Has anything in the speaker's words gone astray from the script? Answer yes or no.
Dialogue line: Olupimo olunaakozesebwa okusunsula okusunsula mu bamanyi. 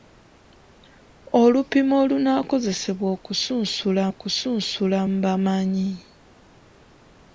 no